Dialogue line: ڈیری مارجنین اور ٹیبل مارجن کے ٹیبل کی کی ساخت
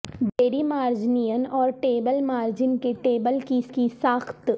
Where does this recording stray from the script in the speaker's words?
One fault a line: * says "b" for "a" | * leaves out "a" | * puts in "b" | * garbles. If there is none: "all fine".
all fine